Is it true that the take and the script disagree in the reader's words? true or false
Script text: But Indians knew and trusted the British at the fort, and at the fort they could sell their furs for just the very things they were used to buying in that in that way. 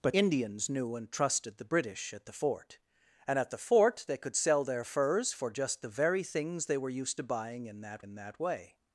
false